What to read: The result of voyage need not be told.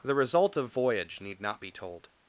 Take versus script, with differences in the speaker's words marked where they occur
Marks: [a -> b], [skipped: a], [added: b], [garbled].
The result of voyage need not be told.